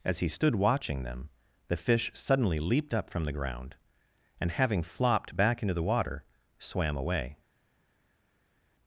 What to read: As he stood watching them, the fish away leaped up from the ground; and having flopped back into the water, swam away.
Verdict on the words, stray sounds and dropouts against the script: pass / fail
fail